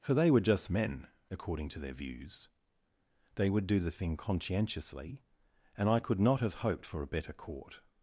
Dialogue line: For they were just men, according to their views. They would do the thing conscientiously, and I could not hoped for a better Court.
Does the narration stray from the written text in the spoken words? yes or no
yes